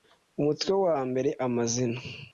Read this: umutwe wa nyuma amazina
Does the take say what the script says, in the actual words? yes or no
no